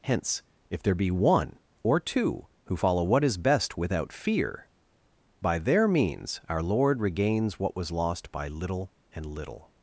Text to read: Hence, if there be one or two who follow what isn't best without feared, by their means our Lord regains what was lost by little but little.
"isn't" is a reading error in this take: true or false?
true